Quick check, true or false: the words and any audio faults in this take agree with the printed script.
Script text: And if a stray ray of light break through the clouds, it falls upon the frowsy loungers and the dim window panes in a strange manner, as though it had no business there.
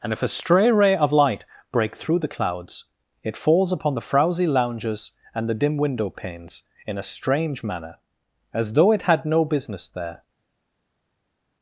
true